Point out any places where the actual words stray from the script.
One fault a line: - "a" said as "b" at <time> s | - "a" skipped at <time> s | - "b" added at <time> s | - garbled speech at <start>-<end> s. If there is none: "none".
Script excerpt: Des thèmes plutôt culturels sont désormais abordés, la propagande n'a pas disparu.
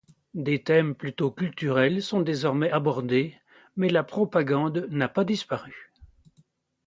- "mais" added at 3.8 s